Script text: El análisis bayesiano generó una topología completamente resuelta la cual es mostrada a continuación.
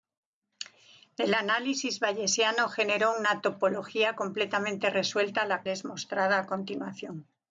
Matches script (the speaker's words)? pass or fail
fail